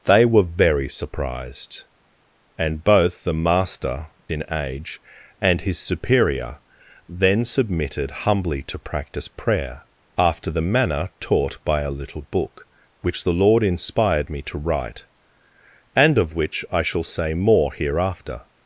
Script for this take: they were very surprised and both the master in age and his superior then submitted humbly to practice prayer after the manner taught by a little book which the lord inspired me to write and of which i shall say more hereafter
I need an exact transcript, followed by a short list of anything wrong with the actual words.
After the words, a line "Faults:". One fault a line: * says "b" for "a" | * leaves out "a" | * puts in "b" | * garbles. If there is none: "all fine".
they were very surprised and both the master in age and his superior then submitted humbly to practice prayer after the manner taught by a little book which the lord inspired me to write and of which i shall say more hereafter
Faults:
all fine